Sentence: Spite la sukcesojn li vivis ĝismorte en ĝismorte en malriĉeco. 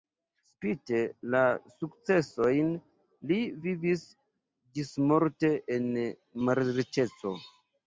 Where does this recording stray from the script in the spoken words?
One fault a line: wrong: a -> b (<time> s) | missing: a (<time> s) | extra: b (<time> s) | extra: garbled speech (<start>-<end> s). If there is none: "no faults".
missing: ĝismorte en (5.9 s)